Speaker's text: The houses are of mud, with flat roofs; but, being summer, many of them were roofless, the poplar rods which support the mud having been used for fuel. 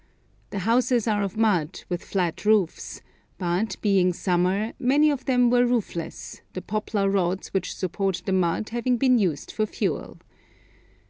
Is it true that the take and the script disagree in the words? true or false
false